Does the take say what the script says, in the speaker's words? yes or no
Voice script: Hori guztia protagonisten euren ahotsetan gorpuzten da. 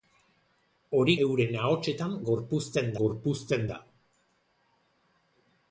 no